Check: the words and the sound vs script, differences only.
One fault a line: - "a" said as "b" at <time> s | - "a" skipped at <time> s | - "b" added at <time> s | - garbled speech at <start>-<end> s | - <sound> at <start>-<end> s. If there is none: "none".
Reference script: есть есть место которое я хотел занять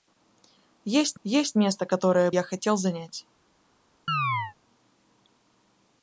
- chirp at 4.1-4.5 s